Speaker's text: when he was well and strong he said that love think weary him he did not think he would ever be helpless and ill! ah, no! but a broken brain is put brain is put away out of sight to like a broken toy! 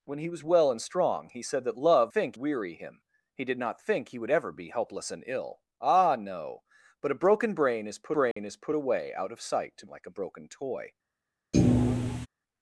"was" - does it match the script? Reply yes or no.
yes